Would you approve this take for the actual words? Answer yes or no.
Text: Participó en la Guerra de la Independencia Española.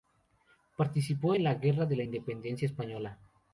yes